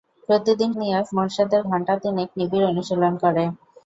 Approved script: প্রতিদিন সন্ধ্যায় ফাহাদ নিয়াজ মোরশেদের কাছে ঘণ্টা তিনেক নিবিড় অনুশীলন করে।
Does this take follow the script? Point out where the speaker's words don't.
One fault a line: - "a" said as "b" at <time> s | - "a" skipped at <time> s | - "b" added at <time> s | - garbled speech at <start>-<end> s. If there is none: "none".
- "সন্ধ্যায় ফাহাদ" skipped at 0.7 s
- "কাছে" skipped at 1.6 s